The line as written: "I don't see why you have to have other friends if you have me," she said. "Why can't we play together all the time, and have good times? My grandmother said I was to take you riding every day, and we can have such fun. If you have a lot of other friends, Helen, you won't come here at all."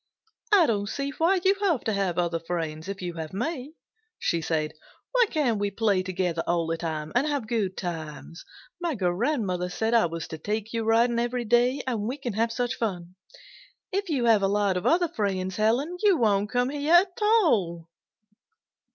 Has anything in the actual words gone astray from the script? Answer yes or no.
no